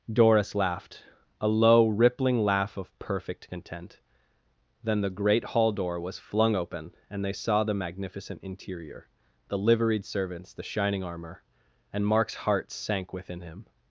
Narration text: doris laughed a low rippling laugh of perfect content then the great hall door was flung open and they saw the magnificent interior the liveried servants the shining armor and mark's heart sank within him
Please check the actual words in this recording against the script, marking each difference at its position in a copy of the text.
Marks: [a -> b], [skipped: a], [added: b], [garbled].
doris laughed a low rippling laugh of perfect content then the great hall door was flung open and they saw the magnificent interior the liveried servants the shining armor and mark's heart sank within him